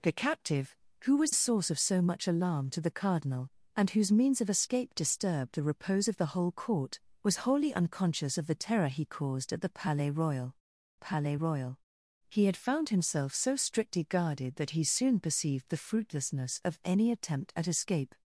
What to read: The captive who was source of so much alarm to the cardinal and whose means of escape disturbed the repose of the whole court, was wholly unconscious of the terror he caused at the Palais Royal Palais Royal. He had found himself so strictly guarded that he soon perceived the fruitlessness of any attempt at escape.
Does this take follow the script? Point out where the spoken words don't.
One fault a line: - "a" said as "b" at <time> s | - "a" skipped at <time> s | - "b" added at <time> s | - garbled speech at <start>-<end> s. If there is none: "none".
none